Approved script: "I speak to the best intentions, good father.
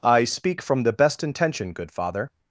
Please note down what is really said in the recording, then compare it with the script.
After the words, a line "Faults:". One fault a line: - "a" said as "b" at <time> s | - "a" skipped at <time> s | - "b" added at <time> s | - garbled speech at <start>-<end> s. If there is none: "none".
"I speak from the best intention, good father.
Faults:
- "to" said as "from" at 0.6 s
- "intentions" said as "intention" at 1.2 s